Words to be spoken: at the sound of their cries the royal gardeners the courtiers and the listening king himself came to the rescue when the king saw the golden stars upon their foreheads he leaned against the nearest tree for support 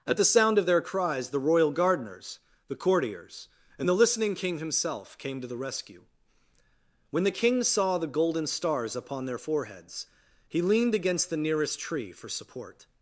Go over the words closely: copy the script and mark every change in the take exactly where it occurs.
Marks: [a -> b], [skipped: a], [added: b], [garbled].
at the sound of their cries the royal gardeners the courtiers and the listening king himself came to the rescue when the king saw the golden stars upon their foreheads he leaned against the nearest tree for support